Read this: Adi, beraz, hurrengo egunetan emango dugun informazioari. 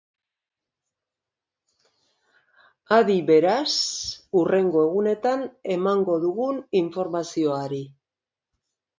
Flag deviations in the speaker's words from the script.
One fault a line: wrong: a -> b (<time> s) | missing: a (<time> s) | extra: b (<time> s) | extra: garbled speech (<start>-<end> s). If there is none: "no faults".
no faults